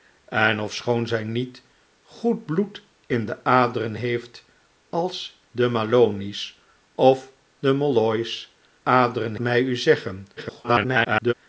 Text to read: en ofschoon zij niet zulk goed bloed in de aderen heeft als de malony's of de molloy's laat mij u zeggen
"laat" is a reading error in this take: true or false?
true